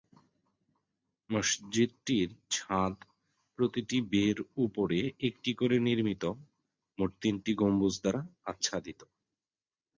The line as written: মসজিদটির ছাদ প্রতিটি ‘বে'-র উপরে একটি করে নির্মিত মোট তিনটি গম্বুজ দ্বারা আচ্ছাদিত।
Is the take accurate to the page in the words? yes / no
yes